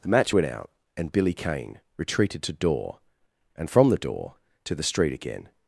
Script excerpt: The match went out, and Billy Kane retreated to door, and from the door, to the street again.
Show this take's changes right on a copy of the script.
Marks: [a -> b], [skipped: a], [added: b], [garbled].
The match went out, and Billy Kane retreated to door, and from the door, to the street again.